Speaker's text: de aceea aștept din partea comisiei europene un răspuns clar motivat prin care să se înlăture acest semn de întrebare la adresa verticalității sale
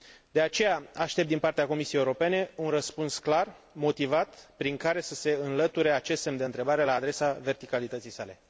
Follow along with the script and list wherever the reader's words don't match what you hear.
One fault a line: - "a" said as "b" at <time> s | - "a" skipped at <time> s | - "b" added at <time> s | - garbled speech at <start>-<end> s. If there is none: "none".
none